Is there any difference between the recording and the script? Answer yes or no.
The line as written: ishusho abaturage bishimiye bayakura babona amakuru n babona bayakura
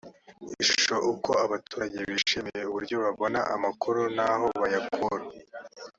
yes